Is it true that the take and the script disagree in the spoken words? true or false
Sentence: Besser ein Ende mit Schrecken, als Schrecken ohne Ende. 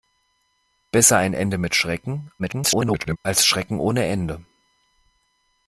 true